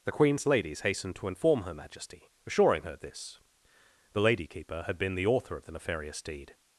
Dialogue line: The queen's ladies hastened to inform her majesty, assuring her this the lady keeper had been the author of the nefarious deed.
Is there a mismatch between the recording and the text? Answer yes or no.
no